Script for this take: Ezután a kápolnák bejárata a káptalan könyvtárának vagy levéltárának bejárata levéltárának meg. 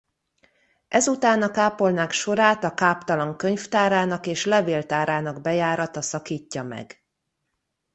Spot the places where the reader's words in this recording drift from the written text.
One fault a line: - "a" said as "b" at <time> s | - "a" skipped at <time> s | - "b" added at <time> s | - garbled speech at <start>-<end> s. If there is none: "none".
- "bejárata" said as "sorát" at 2.1 s
- "vagy" said as "és" at 4.3 s
- "levéltárának" said as "szakítja" at 6.0 s